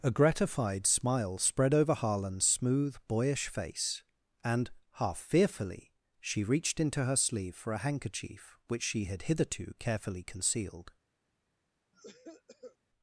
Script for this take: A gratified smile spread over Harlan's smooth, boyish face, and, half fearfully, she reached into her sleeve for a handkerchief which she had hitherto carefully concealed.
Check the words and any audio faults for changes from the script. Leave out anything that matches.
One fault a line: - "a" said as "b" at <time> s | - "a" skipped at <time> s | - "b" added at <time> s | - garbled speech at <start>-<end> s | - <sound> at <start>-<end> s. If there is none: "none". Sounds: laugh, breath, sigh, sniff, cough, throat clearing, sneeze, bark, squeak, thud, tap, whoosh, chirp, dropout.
- cough at 11.9-12.8 s